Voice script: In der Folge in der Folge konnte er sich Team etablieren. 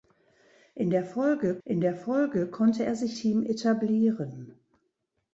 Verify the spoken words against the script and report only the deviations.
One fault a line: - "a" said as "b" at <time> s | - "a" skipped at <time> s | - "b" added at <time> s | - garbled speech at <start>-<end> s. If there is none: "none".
none